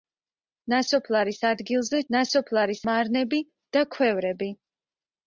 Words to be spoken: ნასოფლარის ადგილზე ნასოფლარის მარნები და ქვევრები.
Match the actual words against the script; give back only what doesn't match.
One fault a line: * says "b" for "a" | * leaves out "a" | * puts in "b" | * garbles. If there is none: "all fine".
all fine